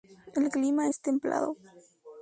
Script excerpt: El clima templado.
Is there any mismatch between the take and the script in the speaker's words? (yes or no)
yes